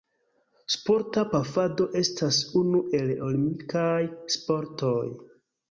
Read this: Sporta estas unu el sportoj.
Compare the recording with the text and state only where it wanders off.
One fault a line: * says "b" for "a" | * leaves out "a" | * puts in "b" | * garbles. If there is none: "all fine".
* puts in "pafado"
* puts in "olimpikaj"